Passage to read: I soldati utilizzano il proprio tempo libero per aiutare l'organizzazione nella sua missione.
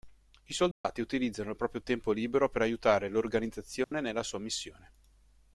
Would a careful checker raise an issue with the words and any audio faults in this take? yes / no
yes